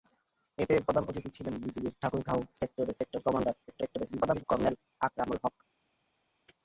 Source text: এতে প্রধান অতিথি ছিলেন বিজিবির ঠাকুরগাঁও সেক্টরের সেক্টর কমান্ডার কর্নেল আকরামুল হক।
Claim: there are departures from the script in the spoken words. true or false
true